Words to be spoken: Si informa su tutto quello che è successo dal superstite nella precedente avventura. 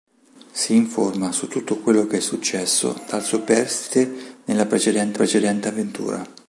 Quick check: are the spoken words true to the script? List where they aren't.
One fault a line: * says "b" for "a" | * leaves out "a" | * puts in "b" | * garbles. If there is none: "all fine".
* puts in "precedente"